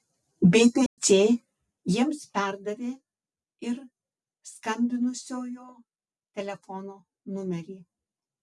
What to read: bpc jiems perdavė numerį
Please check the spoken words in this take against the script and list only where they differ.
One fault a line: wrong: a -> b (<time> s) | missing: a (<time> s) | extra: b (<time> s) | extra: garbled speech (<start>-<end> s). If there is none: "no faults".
extra: ir skambinusiojo telefono (3.7 s)